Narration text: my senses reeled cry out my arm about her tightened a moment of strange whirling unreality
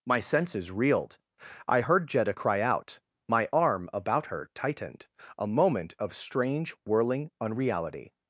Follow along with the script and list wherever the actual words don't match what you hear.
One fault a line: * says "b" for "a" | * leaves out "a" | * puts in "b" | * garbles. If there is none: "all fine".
* puts in "i heard jetta"